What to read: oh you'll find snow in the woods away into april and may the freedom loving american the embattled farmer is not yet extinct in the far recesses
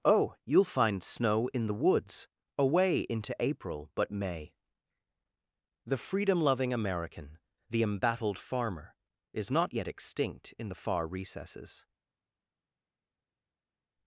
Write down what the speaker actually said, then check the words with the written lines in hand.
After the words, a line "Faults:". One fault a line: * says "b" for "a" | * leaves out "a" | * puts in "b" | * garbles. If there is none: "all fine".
oh you'll find snow in the woods away into april but may the freedom loving american the embattled farmer is not yet extinct in the far recesses
Faults:
* says "but" for "and"